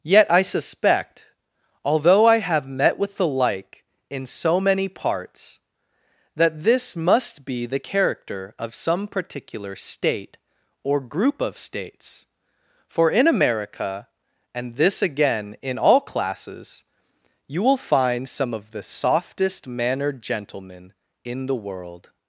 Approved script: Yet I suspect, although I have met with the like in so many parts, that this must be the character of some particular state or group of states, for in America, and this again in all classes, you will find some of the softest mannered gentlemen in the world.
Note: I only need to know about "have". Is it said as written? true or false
true